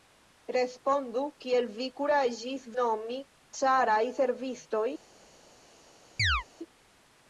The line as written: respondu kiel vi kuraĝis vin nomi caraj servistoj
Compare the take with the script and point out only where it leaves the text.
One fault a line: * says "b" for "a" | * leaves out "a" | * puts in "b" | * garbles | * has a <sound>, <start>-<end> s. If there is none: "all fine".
* leaves out "vin"
* has a chirp, 6.2-6.4 s